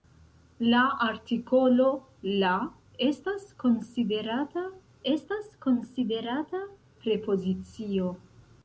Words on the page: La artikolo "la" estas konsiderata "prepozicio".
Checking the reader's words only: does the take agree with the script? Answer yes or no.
no